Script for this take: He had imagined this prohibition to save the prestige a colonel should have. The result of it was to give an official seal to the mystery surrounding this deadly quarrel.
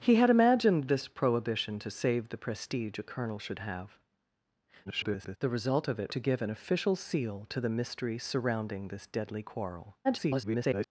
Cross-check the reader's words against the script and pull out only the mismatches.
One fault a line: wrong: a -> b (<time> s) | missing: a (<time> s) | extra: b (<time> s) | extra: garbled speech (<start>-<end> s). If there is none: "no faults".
extra: garbled speech (4.9-5.4 s)
missing: was (6.1 s)
extra: garbled speech (10.0-10.9 s)